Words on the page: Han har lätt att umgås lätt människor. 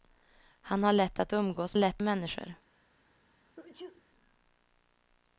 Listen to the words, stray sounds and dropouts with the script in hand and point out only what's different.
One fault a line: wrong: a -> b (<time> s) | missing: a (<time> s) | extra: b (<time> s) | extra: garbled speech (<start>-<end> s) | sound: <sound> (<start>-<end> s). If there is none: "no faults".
sound: sneeze (3.6-4.0 s)